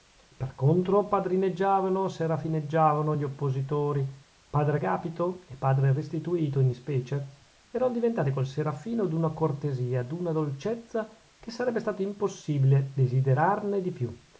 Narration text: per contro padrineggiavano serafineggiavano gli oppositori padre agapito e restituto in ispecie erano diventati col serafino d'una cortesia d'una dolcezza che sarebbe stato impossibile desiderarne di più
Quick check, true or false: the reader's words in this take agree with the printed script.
false